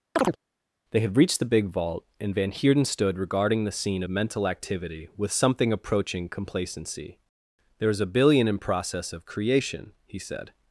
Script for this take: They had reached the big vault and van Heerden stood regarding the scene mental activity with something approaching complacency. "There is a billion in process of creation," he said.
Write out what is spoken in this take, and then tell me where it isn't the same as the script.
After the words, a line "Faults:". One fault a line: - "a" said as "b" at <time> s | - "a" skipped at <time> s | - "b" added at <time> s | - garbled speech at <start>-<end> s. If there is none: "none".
They had reached the big vault and van Heerden stood regarding the scene mental activity with something approaching complacency. "There is a billion in process of creation," he said.
Faults:
none